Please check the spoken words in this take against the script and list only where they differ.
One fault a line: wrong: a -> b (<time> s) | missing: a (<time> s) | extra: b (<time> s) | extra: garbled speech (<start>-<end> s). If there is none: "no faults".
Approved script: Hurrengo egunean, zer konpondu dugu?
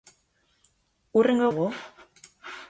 missing: egunean zer konpondu (1.4 s)